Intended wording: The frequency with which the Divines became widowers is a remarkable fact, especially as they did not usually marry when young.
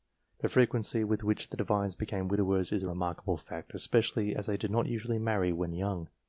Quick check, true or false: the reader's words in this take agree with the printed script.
true